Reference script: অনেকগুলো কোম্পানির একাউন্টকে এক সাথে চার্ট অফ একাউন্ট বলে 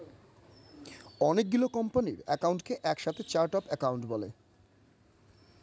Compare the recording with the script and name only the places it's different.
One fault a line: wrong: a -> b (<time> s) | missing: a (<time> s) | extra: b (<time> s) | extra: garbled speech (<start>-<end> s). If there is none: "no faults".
no faults